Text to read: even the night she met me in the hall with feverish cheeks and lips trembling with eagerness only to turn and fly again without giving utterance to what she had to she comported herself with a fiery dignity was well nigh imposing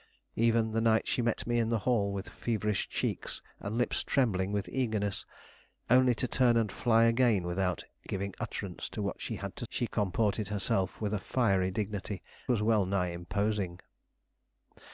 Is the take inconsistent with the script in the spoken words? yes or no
no